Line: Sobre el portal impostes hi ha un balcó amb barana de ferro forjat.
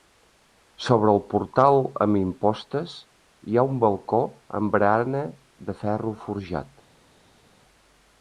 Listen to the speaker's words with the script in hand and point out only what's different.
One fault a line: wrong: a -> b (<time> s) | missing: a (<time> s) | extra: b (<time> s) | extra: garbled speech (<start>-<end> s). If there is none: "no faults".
extra: amb (2.0 s)